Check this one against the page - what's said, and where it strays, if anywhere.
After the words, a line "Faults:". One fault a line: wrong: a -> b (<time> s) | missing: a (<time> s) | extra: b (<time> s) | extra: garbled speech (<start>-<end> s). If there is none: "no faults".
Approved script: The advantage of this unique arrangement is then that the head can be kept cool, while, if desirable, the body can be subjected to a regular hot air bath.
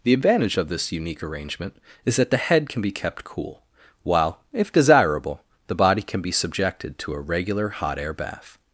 The advantage of this unique arrangement is that the head can be kept cool, while, if desirable, the body can be subjected to a regular hot air bath.
Faults:
missing: then (2.1 s)